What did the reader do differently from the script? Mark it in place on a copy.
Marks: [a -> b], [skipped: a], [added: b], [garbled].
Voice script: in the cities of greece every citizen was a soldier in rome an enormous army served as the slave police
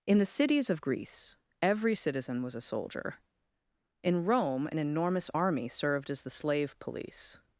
in the cities of greece every citizen was a soldier in rome an enormous army served as the slave police